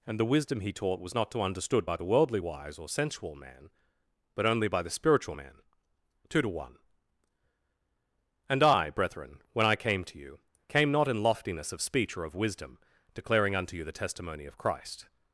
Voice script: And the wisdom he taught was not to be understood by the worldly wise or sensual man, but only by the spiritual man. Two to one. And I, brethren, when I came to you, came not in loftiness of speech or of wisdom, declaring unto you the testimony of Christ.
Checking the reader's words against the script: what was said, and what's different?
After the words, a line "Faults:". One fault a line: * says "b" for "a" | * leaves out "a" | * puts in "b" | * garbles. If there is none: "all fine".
And the wisdom he taught was not to understood by the worldly wise or sensual man, but only by the spiritual man. Two to one. And I, brethren, when I came to you, came not in loftiness of speech or of wisdom, declaring unto you the testimony of Christ.
Faults:
* leaves out "be"